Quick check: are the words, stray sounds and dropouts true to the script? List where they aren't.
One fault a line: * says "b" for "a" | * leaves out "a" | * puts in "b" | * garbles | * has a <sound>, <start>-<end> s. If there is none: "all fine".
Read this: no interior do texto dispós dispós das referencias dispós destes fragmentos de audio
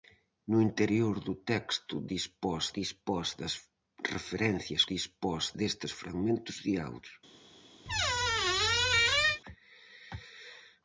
* has a squeak, 7.9-9.4 s